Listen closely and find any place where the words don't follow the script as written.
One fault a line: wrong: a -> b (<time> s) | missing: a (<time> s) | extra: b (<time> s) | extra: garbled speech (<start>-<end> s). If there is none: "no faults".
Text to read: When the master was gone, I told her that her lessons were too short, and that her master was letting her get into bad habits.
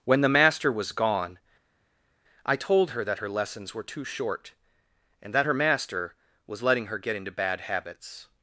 no faults